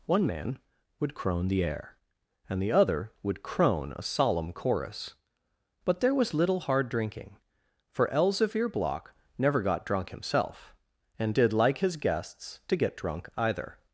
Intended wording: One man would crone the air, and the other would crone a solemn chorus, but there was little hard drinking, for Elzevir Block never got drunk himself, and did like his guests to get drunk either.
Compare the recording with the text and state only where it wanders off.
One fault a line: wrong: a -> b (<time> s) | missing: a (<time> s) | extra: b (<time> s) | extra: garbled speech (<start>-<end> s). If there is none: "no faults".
no faults